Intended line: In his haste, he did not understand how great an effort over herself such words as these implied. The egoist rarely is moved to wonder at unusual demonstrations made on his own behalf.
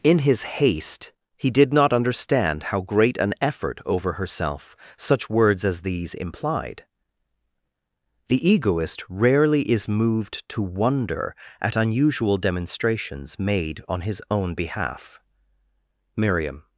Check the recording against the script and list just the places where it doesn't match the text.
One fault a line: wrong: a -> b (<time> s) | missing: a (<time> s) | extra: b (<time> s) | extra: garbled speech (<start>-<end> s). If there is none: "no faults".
extra: Miriam (16.1 s)